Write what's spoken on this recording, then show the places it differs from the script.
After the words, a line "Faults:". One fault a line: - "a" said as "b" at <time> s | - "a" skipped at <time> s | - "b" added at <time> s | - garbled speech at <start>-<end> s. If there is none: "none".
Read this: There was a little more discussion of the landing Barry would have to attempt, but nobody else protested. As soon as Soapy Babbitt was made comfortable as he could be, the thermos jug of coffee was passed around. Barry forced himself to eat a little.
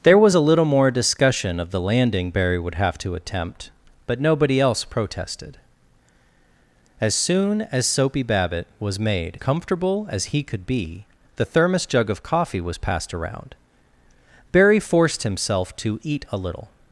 There was a little more discussion of the landing Barry would have to attempt, but nobody else protested. As soon as Soapy Babbitt was made comfortable as he could be, the thermos jug of coffee was passed around. Barry forced himself to eat a little.
Faults:
none